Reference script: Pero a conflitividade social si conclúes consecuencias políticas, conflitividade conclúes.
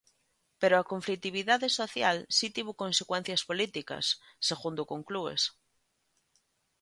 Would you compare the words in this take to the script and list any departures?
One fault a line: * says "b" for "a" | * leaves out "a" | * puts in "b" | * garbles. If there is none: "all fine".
* says "tivo" for "conclúes"
* says "segundo" for "conflitividade"